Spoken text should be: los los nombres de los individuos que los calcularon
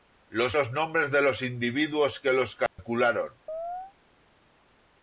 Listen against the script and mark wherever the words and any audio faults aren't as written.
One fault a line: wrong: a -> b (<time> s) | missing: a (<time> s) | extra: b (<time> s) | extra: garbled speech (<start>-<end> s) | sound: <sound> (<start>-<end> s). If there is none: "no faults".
sound: dropout (2.7-2.8 s)
sound: chirp (3.5-3.9 s)